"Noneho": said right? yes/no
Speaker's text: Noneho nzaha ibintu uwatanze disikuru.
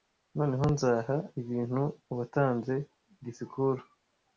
yes